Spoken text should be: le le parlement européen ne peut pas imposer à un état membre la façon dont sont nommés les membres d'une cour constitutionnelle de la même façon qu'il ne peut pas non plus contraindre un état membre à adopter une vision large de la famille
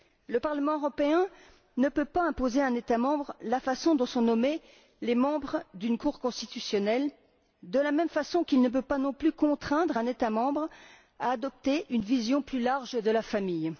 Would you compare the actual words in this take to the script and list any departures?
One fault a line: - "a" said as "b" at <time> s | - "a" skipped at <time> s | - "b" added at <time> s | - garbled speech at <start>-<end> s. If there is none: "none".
- "le" skipped at 0.4 s
- "plus" added at 12.4 s